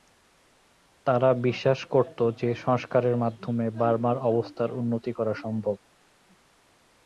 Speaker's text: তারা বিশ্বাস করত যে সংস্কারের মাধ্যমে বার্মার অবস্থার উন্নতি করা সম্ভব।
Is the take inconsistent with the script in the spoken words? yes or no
no